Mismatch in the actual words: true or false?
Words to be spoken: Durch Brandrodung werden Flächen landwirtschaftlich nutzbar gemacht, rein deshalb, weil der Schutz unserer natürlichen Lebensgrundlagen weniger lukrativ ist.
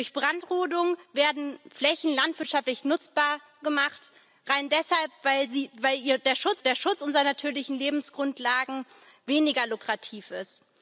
true